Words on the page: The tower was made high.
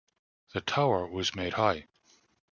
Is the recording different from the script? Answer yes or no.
no